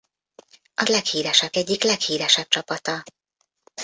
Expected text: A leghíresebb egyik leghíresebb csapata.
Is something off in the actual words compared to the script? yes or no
no